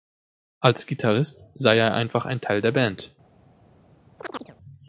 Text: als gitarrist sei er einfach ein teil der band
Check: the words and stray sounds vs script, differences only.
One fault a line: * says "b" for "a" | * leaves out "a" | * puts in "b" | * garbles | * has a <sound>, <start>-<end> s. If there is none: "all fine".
* has a chirp, 4.2-4.6 s